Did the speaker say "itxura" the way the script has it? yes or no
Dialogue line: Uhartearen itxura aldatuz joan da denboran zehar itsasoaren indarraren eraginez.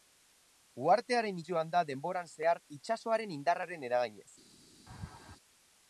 no